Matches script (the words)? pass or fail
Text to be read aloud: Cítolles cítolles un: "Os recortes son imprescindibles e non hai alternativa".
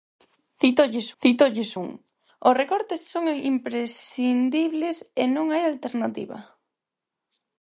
pass